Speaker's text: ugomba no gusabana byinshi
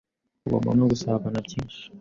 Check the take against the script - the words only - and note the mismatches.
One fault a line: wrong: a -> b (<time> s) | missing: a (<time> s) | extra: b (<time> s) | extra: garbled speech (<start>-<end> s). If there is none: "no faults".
no faults